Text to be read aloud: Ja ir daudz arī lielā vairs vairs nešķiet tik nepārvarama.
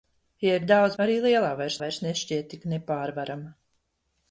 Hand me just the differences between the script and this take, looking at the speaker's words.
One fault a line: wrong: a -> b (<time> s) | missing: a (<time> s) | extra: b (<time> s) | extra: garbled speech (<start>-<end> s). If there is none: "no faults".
no faults